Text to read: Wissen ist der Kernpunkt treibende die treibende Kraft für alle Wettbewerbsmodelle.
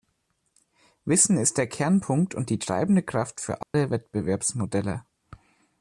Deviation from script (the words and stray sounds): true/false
true